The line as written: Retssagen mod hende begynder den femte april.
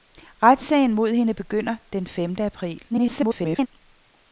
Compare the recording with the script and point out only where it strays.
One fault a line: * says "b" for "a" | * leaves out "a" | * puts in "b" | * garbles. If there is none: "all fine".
* garbles